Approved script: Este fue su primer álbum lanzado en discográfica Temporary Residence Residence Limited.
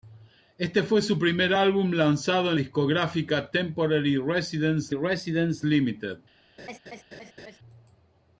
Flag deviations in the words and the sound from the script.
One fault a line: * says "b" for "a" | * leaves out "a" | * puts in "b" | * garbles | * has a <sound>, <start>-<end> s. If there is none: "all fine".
* has a laugh, 6.6-7.6 s